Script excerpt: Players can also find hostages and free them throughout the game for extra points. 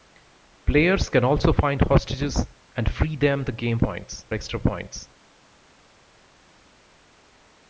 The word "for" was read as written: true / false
false